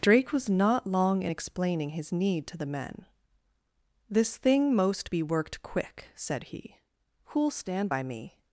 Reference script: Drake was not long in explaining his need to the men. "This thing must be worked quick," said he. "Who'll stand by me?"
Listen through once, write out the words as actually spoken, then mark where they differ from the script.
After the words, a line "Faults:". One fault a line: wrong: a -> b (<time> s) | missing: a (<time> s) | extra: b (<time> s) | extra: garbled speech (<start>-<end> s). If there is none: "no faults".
Drake was not long in explaining his need to the men. "This thing most be worked quick," said he. "Who'll stand by me?"
Faults:
wrong: must -> most (4.7 s)